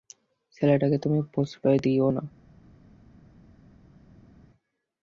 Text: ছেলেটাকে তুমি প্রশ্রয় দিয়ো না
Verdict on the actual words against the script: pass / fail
pass